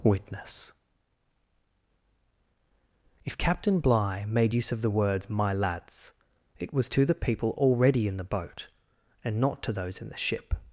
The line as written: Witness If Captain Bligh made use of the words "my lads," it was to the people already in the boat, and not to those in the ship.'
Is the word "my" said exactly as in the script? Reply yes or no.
yes